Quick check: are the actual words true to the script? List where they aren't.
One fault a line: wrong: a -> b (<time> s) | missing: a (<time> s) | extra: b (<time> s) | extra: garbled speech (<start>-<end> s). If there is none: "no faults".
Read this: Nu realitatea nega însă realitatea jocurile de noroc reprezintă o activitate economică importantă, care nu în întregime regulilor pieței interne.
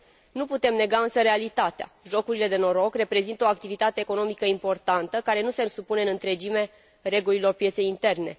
wrong: realitatea -> putem (0.5 s)
extra: se supune (5.5 s)